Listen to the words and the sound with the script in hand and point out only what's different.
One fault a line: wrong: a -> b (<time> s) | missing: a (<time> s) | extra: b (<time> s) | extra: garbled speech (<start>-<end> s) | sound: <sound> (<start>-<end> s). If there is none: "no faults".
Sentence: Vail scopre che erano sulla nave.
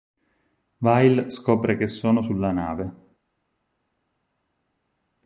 wrong: erano -> sono (1.9 s)